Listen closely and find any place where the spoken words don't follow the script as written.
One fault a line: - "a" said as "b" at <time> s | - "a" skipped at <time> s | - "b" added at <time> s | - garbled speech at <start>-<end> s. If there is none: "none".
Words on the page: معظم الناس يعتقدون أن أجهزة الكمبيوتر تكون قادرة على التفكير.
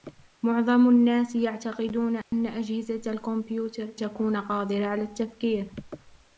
none